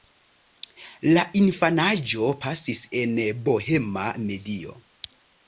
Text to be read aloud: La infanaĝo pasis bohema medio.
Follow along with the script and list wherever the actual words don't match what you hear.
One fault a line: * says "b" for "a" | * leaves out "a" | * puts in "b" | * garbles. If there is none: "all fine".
* puts in "en"